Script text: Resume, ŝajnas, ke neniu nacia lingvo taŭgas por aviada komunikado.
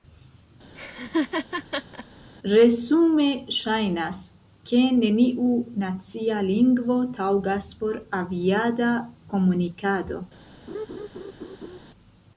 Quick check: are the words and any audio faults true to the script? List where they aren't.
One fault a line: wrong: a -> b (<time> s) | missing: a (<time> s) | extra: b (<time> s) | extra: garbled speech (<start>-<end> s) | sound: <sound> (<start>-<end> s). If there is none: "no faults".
sound: laugh (0.7-2.1 s)
sound: laugh (10.7-11.8 s)